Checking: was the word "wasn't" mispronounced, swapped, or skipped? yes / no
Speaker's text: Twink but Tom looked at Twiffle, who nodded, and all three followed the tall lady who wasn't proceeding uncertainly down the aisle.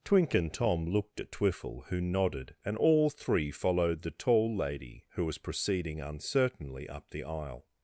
yes